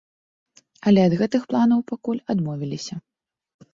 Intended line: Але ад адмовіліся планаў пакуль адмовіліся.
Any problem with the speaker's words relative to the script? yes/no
yes